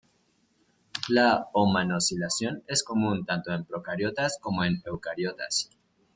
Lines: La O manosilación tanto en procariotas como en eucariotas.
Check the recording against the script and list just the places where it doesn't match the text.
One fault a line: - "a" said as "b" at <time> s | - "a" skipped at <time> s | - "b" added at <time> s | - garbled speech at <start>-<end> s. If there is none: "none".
- "es común" added at 2.6 s